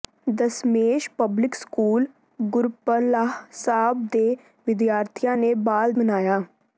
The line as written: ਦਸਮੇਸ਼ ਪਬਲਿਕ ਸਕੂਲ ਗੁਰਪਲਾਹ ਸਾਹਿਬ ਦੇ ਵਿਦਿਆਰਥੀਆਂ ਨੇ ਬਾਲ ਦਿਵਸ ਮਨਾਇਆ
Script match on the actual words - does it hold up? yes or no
no